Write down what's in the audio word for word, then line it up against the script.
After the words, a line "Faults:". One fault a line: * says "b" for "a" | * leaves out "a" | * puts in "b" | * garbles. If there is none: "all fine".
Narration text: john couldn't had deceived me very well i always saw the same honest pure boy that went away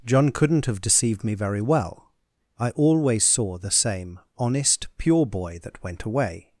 john couldn't have deceived me very well i always saw the same honest pure boy that went away
Faults:
* says "have" for "had"